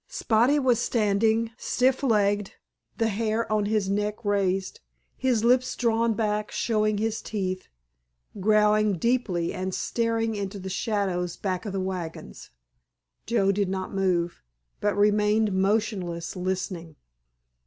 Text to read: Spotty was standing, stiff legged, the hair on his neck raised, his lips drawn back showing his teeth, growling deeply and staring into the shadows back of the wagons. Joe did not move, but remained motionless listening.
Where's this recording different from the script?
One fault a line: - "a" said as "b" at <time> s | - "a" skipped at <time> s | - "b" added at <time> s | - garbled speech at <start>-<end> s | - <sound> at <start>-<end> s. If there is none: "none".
none